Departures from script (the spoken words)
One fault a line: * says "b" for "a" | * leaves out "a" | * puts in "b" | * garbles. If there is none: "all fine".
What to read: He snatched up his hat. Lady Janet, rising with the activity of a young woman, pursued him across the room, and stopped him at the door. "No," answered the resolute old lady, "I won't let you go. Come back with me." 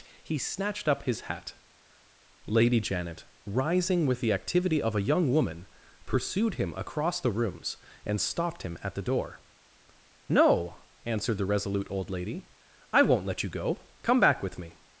* says "rooms" for "room"